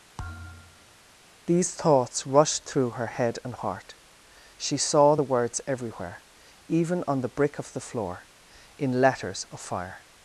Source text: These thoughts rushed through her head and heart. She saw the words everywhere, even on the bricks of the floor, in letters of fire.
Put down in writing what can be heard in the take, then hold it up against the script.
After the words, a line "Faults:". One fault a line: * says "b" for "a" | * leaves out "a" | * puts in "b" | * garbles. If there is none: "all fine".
These thoughts rushed through her head and heart. She saw the words everywhere, even on the brick of the floor, in letters of fire.
Faults:
* says "brick" for "bricks"